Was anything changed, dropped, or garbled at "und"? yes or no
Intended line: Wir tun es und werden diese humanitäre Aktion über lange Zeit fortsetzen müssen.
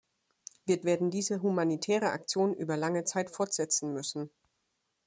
yes